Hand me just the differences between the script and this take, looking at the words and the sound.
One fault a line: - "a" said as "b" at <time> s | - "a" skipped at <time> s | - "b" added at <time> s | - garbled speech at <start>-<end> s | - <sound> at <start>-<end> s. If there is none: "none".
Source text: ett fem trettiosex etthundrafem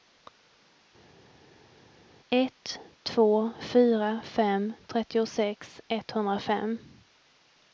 - "två fyra" added at 3.0 s